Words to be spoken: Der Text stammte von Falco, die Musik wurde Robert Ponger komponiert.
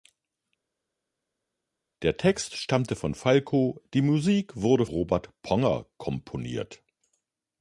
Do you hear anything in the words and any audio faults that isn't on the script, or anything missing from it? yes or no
no